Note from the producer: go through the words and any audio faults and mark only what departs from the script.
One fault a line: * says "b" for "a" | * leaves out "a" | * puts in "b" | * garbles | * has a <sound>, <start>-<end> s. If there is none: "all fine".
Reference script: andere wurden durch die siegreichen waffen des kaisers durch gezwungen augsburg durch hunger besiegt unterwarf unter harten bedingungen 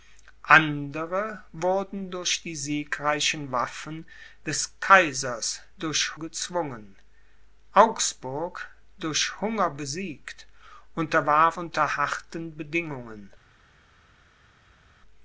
all fine